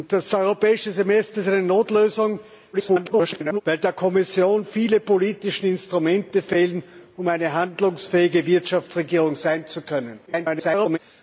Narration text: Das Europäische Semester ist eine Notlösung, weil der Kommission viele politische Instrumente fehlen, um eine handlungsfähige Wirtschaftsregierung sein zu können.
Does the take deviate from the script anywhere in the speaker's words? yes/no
yes